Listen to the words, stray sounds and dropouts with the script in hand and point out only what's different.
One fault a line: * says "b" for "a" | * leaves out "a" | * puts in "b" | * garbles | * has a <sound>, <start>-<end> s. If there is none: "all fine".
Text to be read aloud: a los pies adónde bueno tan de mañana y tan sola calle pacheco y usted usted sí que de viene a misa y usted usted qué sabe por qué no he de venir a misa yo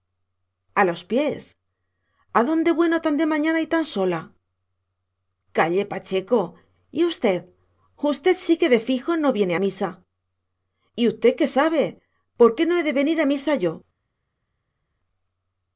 * puts in "fijo no"
* leaves out "usted"